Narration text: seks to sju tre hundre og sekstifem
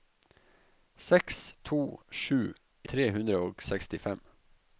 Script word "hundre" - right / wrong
right